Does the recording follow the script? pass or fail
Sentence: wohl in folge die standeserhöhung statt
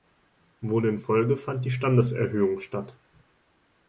fail